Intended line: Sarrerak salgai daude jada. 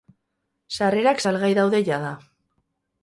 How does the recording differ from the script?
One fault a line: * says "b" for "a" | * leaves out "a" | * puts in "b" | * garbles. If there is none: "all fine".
all fine